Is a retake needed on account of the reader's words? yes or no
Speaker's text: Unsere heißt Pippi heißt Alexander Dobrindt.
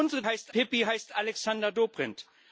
no